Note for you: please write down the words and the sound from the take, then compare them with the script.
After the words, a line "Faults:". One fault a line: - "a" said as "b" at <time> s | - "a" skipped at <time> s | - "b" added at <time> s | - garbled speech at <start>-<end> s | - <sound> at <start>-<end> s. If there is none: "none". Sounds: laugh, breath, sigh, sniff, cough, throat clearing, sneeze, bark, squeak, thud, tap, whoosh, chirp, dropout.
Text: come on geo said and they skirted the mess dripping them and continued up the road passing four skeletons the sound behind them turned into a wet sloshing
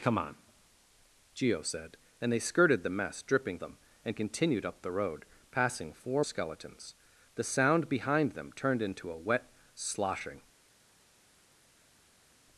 come on geo said and they skirted the mess dripping them and continued up the road passing four skeletons the sound behind them turned into a wet sloshing
Faults:
none